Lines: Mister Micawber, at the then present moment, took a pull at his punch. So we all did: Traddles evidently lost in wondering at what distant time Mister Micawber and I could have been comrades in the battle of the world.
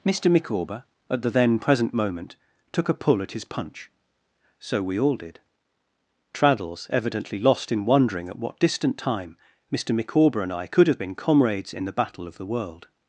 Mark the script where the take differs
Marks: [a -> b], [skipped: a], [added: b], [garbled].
Mister Micawber, at the then present moment, took a pull at his punch. So we all did: Traddles evidently lost in wondering at what distant time Mister Micawber and I could have been comrades in the battle of the world.